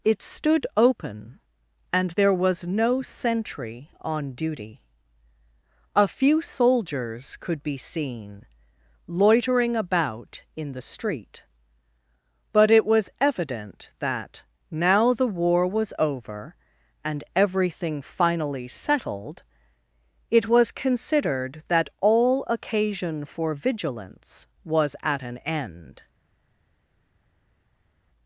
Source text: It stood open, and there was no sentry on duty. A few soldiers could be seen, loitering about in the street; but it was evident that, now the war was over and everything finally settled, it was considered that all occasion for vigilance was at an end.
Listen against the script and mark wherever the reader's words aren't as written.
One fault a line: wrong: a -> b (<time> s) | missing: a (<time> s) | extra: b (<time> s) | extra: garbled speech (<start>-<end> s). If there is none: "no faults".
no faults